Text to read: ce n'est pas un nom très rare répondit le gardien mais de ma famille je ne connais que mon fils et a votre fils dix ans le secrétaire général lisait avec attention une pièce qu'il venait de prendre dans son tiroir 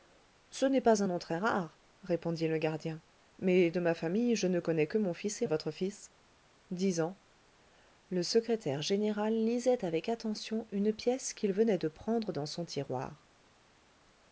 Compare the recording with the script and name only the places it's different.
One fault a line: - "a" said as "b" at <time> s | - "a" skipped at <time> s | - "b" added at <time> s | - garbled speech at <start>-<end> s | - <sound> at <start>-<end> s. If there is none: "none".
none